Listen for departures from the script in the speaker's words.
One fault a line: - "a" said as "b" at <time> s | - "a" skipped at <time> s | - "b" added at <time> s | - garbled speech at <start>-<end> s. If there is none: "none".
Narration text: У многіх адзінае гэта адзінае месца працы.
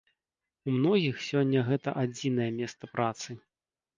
- "адзінае" said as "сёння" at 1.2 s